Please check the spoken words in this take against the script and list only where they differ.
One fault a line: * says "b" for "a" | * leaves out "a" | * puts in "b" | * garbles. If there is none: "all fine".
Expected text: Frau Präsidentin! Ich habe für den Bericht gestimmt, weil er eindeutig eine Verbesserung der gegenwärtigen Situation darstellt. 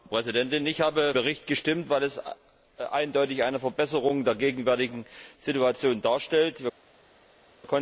* leaves out "für den"